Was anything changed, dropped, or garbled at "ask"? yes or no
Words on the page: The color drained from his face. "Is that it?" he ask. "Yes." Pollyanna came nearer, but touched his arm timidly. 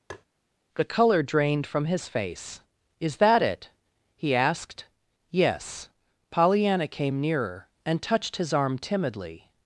yes